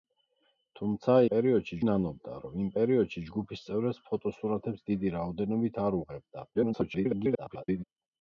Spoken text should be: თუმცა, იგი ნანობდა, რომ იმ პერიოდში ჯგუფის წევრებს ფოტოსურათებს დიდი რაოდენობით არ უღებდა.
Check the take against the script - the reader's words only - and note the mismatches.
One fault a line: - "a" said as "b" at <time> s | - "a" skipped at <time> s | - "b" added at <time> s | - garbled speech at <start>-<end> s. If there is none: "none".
- "იგი" said as "პერიოდში" at 1.3 s
- garbled speech at 6.5-7.8 s